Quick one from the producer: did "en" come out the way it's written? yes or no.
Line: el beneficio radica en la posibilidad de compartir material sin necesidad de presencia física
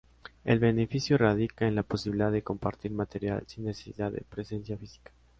yes